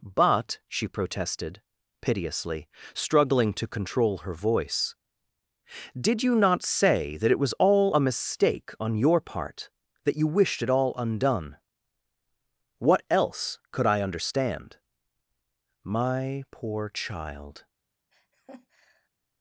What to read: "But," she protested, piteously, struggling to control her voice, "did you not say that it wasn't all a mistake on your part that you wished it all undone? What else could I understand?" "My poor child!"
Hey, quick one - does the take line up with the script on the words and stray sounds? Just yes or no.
no